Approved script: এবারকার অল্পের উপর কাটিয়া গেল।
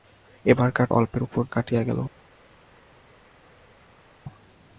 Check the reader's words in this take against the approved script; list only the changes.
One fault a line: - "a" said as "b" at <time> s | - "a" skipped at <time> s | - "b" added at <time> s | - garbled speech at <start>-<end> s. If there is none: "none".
none